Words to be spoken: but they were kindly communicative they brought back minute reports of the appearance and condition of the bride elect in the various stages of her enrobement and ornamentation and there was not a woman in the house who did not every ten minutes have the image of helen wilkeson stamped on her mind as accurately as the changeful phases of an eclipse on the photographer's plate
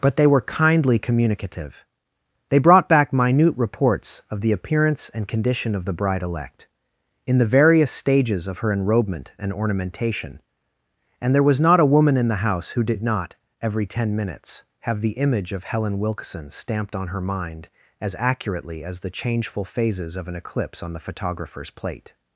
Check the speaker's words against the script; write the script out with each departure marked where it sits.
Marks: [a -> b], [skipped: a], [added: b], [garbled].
but they were kindly communicative they brought back minute reports of the appearance and condition of the bride elect in the various stages of her enrobement and ornamentation and there was not a woman in the house who did not every ten minutes have the image of helen wilkeson stamped on her mind as accurately as the changeful phases of an eclipse on the photographer's plate